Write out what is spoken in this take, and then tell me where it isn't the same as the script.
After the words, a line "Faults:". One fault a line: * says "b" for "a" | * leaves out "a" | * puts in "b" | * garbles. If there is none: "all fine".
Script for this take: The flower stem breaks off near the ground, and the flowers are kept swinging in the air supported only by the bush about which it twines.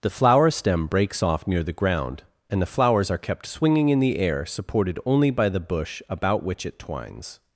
The flower stem breaks off near the ground, and the flowers are kept swinging in the air supported only by the bush about which it twines.
Faults:
all fine